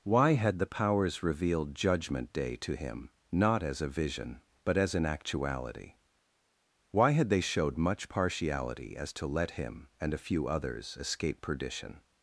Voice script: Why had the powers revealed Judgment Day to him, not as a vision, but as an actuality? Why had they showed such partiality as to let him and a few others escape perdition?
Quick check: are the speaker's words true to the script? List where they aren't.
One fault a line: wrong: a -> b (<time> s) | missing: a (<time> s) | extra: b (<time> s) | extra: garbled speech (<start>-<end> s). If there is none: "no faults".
wrong: such -> much (7.8 s)